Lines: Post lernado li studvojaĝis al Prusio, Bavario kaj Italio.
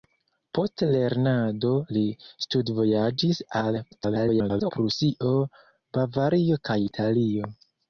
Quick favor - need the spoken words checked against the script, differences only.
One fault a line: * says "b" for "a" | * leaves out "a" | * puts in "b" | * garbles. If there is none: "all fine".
* garbles